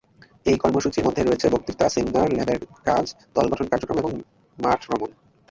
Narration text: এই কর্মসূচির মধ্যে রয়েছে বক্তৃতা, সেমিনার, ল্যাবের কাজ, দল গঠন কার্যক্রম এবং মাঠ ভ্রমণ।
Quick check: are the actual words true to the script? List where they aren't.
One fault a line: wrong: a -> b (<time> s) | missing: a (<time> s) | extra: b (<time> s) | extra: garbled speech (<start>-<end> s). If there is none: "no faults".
no faults